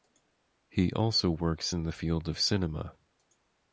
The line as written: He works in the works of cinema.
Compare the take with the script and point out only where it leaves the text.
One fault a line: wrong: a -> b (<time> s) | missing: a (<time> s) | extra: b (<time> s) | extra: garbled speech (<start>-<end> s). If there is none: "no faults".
extra: also (0.9 s)
wrong: works -> field (1.9 s)